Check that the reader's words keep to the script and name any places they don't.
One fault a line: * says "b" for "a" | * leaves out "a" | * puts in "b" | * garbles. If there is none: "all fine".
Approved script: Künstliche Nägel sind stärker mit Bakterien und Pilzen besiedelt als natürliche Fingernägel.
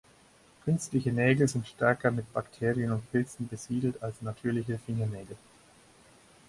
all fine